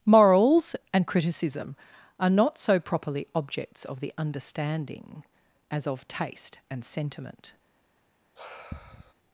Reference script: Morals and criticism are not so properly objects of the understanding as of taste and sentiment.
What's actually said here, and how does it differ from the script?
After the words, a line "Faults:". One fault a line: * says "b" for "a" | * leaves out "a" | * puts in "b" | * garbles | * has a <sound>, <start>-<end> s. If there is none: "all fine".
Morals and criticism are not so properly objects of the understanding as of taste and sentiment.
Faults:
* has a sigh, 8.4-9.1 s